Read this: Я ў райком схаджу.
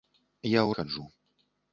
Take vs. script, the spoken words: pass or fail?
fail